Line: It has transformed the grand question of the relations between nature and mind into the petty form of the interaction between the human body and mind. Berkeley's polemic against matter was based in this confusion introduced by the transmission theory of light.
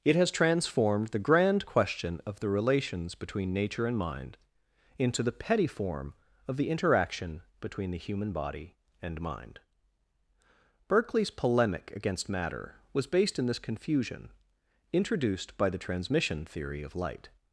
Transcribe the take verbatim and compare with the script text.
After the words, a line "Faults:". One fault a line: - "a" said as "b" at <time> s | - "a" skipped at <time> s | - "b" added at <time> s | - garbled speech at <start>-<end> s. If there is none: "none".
It has transformed the grand question of the relations between nature and mind into the petty form of the interaction between the human body and mind. Berkeley's polemic against matter was based in this confusion introduced by the transmission theory of light.
Faults:
none